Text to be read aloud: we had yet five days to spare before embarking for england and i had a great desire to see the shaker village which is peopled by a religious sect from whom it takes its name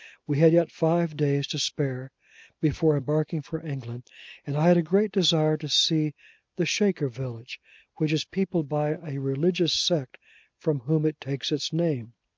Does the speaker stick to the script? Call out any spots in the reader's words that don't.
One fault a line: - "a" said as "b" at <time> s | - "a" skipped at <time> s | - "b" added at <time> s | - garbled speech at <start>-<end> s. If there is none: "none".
none